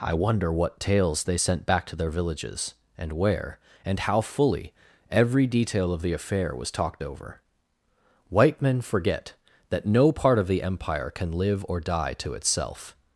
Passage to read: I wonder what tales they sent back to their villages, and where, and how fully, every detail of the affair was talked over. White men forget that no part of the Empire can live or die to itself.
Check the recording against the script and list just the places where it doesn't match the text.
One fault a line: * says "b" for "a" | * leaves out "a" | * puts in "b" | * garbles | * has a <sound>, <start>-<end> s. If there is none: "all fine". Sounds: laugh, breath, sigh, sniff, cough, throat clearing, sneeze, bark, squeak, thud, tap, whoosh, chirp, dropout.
all fine